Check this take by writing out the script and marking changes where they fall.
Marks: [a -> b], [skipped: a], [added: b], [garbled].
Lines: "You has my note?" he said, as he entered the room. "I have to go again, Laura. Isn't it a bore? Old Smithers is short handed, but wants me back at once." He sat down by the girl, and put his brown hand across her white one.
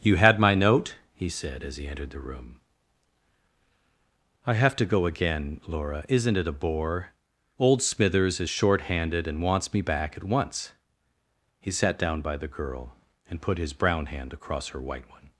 "You [has -> had] my note?" he said, as he entered the room. "I have to go again, Laura. Isn't it a bore? Old Smithers is short handed, [but -> and] wants me back at once." He sat down by the girl, and put his brown hand across her white one.